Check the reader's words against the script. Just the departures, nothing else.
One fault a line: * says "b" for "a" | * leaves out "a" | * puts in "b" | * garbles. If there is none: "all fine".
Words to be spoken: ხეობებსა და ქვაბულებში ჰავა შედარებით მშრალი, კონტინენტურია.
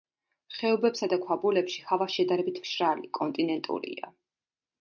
all fine